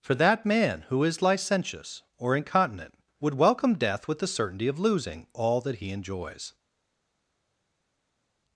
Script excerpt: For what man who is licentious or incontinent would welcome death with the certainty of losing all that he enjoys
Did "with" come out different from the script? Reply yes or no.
no